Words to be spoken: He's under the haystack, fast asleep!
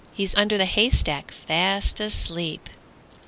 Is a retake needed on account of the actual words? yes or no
no